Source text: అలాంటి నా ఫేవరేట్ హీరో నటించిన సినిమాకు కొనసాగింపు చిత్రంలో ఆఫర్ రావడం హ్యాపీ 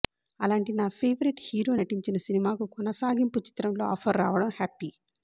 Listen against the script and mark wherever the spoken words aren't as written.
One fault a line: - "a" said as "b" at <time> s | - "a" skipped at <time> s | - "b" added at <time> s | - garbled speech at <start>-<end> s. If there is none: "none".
none